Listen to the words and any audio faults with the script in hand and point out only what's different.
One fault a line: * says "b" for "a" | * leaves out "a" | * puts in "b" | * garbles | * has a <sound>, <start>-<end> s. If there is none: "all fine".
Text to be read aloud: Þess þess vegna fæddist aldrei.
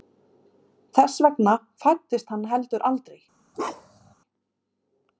* leaves out "þess"
* puts in "hann heldur"
* has a bark, 3.5-4.1 s